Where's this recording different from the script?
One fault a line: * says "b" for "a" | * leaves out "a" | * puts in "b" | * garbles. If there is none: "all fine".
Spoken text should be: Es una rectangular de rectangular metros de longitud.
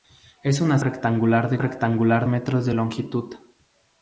all fine